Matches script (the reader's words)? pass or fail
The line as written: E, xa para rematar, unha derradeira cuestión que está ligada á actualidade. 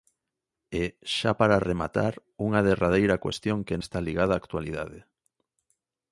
pass